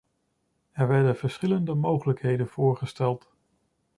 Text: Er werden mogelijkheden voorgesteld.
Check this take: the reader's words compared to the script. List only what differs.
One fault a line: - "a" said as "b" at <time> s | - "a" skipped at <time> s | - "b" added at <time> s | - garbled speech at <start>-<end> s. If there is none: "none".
- "verschillende" added at 1.1 s